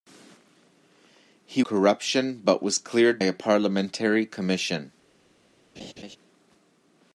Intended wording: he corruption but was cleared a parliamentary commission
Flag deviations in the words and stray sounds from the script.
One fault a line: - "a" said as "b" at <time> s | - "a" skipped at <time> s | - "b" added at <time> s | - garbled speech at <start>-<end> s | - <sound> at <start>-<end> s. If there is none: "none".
- laugh at 5.8-6.2 s